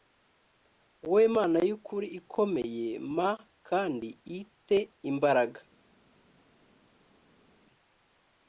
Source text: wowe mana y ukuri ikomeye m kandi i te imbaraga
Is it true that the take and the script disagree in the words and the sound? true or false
false